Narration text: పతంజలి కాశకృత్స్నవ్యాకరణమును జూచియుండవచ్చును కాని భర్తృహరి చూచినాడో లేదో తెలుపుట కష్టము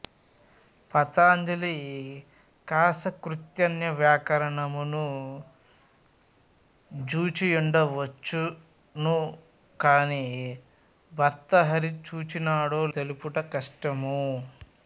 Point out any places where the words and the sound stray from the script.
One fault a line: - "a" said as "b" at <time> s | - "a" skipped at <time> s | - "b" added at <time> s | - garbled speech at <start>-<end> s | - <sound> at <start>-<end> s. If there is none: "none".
- "లేదో" skipped at 12.8 s